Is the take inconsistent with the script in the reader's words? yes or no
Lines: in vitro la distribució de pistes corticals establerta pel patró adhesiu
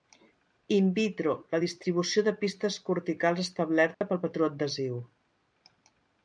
no